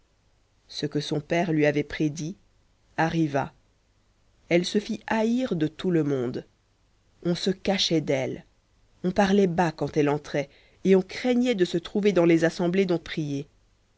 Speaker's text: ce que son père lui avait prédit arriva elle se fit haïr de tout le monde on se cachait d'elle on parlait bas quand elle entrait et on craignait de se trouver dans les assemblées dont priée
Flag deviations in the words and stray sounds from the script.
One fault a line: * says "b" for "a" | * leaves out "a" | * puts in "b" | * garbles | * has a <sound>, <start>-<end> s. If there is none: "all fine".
all fine